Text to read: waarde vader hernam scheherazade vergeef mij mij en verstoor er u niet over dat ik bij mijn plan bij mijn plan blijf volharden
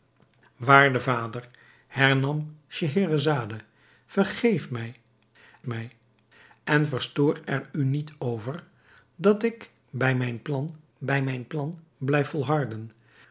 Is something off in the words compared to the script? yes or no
no